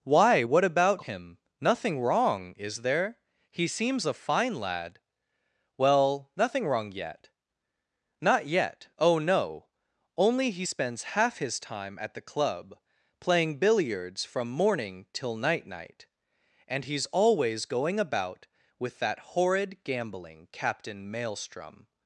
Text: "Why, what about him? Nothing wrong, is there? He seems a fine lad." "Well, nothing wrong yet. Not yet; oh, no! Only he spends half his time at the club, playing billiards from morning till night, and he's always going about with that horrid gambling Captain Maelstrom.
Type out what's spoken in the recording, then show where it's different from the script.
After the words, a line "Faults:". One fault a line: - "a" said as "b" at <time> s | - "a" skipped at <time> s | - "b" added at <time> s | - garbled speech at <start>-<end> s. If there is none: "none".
"Why, what about him? Nothing wrong, is there? He seems a fine lad." "Well, nothing wrong yet. Not yet; oh, no! Only he spends half his time at the club, playing billiards from morning till night night, and he's always going about with that horrid gambling Captain Maelstrom.
Faults:
- "night" added at 15.7 s